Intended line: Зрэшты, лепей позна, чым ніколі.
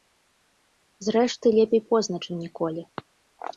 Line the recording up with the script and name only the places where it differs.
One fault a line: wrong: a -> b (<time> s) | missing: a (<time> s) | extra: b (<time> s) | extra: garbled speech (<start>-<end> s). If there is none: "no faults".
no faults